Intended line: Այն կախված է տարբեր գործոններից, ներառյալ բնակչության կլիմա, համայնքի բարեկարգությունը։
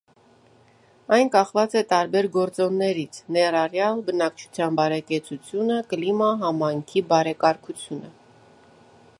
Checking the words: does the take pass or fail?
fail